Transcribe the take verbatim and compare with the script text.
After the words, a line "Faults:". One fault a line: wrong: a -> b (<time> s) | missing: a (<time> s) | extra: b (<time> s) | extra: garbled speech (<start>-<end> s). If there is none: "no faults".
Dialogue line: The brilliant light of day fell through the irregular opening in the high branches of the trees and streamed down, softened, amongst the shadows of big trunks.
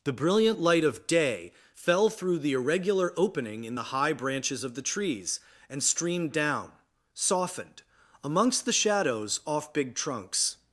The brilliant light of day fell through the irregular opening in the high branches of the trees and streamed down, softened, amongst the shadows off big trunks.
Faults:
wrong: of -> off (9.5 s)